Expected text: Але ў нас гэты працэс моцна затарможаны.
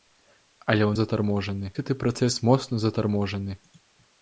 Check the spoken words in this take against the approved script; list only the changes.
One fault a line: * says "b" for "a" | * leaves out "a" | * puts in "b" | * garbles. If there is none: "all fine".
* says "затарможаны" for "нас"